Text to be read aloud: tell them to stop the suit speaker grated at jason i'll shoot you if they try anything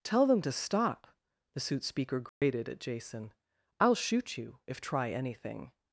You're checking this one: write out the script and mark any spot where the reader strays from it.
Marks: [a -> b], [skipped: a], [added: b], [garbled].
tell them to stop the suit speaker grated at jason i'll shoot you if [skipped: they] try anything